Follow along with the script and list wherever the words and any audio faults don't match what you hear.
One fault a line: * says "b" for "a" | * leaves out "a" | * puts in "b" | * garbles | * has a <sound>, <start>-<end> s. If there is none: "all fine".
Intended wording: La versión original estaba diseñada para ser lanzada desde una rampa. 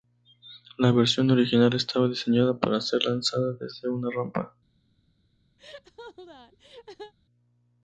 * has a laugh, 5.6-7.1 s